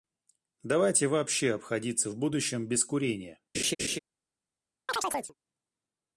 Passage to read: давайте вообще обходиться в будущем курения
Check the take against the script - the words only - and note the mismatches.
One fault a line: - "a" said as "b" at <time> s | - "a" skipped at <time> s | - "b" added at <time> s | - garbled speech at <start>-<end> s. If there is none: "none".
- "без" added at 2.7 s